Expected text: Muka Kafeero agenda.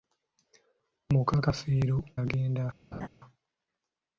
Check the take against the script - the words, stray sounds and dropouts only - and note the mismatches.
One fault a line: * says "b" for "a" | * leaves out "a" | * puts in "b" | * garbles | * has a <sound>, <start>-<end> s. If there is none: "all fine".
* has a laugh, 2.9-3.1 s